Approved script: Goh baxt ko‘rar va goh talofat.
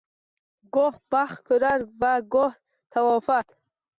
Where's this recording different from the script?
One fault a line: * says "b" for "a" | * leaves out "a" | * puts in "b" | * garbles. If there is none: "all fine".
all fine